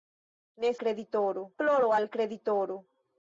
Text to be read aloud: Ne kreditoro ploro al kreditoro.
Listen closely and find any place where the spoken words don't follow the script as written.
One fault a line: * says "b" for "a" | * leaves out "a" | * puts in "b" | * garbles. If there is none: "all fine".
all fine